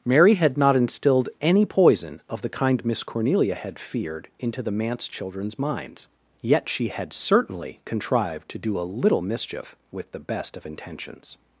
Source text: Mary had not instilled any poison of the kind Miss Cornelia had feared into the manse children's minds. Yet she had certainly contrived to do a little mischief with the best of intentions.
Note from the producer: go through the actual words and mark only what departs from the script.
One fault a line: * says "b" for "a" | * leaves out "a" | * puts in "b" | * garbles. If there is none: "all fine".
all fine